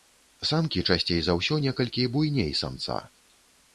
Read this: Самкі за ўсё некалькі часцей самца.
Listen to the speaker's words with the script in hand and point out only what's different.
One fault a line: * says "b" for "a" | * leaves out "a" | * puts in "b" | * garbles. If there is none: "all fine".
* puts in "часцей"
* says "буйней" for "часцей"